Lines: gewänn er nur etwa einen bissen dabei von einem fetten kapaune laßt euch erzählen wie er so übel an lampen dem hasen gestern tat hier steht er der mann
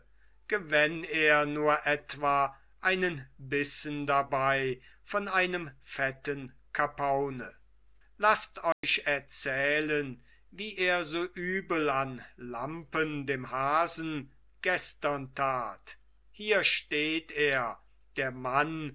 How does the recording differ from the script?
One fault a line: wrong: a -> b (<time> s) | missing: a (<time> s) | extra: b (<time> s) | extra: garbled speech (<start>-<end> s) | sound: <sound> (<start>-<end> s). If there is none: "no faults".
sound: dropout (8.7-8.8 s)